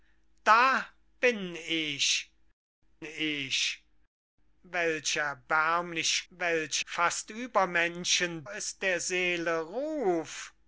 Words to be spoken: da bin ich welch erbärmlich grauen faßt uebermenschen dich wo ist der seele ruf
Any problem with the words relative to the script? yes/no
yes